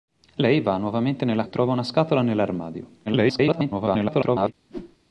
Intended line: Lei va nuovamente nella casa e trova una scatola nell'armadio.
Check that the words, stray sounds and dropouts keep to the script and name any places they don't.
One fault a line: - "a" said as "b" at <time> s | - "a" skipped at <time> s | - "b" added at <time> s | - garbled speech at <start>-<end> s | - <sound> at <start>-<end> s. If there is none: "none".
- "casa" skipped at 1.4 s
- garbled speech at 3.1-4.5 s
- whoosh at 4.7-5.0 s